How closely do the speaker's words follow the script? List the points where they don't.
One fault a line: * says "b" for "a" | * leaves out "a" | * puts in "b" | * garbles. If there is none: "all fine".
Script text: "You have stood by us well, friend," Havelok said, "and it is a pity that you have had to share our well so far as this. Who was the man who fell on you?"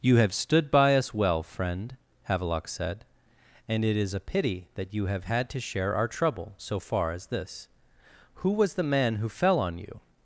* says "trouble" for "well"